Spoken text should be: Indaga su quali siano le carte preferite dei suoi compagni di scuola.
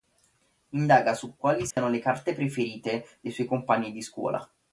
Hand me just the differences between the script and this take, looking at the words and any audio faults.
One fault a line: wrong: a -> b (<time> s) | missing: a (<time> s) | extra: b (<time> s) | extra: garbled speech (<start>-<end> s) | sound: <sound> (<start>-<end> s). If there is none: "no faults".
sound: dropout (1.7-1.8 s)